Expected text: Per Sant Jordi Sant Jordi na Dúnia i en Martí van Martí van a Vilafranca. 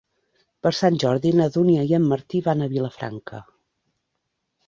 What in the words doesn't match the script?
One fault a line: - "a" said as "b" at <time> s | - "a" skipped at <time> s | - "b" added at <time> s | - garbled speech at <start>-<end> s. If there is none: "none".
- "Sant Jordi" skipped at 1.3 s
- "Martí van" skipped at 2.6 s